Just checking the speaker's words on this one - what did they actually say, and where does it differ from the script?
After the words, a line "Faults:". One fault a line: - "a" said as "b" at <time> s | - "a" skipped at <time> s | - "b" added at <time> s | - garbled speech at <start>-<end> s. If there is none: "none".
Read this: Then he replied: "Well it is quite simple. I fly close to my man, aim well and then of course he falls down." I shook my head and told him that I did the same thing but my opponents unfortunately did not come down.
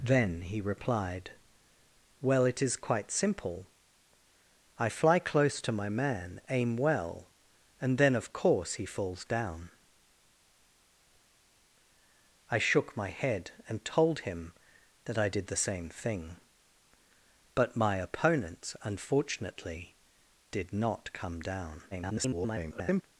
Then he replied: "Well it is quite simple. I fly close to my man, aim well and then of course he falls down." I shook my head and told him that I did the same thing but my opponents unfortunately did not come down. [garbled]
Faults:
- garbled speech at 21.9-23.0 s